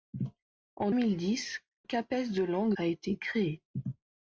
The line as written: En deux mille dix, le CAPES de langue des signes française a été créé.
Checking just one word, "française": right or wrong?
wrong